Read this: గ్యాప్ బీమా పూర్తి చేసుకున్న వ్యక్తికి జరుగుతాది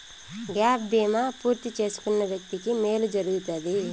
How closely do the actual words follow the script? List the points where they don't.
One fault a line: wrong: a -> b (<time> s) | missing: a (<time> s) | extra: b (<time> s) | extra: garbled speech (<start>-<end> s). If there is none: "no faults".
extra: మేలు (2.8 s)